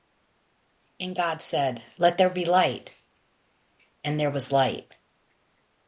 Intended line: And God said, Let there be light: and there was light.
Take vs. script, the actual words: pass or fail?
pass